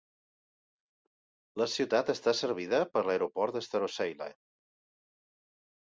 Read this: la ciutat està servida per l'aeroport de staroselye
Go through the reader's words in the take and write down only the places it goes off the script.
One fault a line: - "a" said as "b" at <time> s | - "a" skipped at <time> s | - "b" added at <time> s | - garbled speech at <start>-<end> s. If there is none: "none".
none